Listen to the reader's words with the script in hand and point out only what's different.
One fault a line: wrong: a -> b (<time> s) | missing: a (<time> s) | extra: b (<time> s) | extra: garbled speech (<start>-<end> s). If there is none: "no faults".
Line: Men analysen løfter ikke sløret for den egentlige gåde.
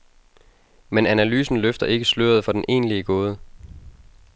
no faults